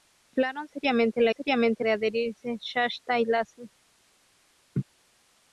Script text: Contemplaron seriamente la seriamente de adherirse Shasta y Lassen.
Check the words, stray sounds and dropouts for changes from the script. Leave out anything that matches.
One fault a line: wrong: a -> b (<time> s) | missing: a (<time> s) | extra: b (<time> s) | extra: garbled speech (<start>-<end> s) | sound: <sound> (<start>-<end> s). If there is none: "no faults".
sound: laugh (4.7-4.8 s)